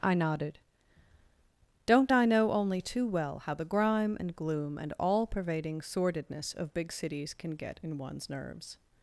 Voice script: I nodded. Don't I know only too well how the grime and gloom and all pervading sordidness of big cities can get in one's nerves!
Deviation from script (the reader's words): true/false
false